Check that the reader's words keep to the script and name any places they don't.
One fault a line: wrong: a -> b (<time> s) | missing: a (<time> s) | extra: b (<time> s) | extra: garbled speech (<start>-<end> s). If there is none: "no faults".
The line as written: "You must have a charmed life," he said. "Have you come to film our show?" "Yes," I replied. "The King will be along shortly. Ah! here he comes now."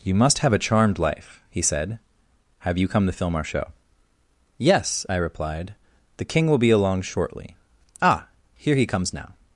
no faults